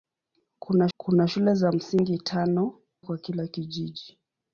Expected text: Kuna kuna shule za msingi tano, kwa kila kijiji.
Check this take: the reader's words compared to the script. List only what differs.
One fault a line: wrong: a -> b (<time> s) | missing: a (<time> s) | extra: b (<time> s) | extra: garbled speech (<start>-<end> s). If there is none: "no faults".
no faults